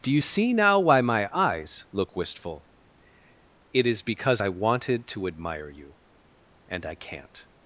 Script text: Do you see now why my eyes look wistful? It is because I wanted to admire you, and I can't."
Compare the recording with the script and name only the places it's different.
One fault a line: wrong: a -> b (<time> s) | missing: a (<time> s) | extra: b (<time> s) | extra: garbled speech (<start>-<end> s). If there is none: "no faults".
no faults